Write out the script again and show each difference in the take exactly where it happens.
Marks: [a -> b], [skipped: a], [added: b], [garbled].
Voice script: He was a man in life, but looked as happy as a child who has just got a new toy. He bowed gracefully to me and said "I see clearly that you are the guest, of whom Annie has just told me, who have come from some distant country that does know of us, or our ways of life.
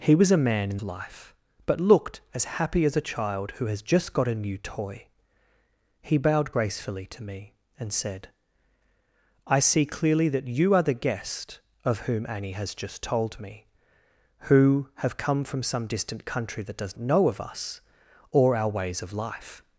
He was a man in life, but looked as happy as a child who has just got a new toy. He bowed gracefully to me and said "I see clearly that you are the guest, of whom Annie has just told me, who have come from some distant country that does know of us, or our ways of life.